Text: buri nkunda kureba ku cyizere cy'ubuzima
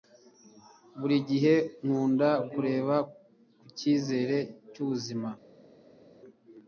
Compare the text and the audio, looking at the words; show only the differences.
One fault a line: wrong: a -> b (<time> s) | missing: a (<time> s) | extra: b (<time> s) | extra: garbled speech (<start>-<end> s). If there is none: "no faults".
extra: gihe (1.3 s)